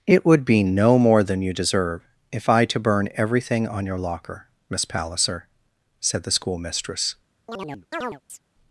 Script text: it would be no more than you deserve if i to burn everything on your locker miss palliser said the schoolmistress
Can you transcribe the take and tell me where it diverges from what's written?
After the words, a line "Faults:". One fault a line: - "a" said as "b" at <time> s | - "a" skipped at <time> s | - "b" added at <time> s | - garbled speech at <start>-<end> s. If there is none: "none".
it would be no more than you deserve if i to burn everything on your locker miss palliser said the schoolmistress
Faults:
none